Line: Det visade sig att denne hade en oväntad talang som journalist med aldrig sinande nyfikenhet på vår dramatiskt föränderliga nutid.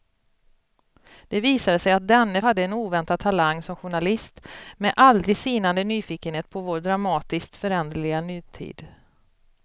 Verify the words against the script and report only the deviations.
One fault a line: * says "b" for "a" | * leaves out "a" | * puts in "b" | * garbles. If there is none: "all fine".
all fine